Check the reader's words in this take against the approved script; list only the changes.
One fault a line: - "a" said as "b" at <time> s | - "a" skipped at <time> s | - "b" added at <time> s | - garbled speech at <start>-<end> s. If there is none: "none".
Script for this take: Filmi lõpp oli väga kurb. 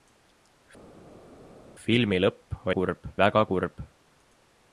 - "oli" said as "kurb" at 2.8 s